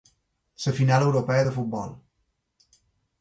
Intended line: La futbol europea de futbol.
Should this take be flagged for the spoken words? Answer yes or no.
yes